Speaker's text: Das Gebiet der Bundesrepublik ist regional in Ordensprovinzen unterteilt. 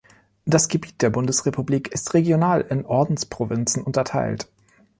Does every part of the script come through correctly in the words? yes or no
yes